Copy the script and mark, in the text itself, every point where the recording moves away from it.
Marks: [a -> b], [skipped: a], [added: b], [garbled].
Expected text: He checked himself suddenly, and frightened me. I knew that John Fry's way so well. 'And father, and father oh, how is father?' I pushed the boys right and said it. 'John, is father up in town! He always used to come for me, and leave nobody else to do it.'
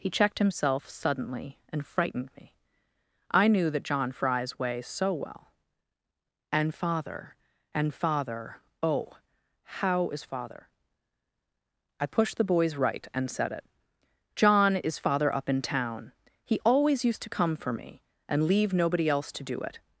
He checked himself suddenly, and frightened me. I knew that John Fry's way so well. 'And father, and father oh, how is father?' I pushed the boys right and said it. 'John, is father up in town! He always used to come for me, and leave nobody else to do it.'